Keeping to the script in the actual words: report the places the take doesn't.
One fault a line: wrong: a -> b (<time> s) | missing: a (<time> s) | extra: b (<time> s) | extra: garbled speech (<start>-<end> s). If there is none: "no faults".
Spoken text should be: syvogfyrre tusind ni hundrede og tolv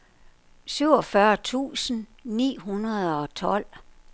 no faults